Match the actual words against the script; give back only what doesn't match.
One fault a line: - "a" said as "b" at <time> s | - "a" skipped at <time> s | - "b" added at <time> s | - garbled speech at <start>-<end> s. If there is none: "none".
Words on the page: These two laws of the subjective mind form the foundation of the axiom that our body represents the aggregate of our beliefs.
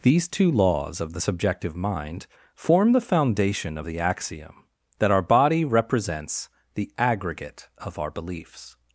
none